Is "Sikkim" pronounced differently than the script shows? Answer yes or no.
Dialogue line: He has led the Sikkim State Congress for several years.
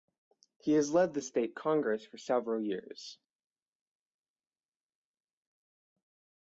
yes